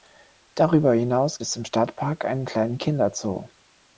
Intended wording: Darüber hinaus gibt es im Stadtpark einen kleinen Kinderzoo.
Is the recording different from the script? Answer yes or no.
yes